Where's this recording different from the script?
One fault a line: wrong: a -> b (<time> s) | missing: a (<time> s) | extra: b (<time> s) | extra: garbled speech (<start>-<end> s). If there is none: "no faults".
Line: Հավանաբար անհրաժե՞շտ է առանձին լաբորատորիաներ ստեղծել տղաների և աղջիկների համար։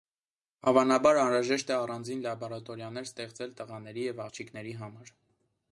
no faults